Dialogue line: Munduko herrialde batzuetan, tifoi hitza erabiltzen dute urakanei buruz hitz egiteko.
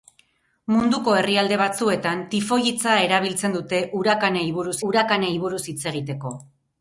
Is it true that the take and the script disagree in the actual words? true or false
true